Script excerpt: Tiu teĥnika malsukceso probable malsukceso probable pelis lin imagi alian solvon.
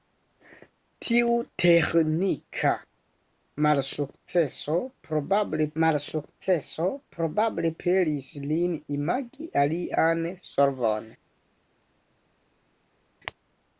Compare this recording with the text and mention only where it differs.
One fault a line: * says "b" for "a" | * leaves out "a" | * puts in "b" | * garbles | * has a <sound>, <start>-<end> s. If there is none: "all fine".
all fine